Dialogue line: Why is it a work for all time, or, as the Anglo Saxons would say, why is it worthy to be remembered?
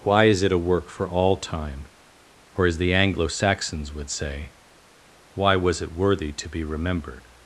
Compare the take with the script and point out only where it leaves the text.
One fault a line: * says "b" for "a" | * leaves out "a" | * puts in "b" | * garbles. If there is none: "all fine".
* says "was" for "is"